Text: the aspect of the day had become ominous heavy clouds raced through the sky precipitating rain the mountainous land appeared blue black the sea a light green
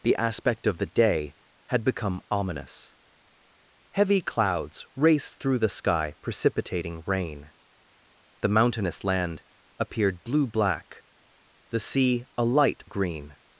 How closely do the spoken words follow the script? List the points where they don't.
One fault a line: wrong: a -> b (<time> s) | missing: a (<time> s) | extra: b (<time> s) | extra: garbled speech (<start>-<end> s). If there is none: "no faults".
no faults